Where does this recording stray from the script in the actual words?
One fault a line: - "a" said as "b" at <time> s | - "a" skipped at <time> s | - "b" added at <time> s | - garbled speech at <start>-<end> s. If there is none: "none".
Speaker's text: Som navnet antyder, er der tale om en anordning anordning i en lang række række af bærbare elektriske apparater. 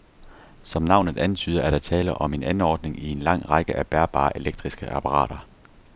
- "anordning" skipped at 3.0 s
- "række" skipped at 3.8 s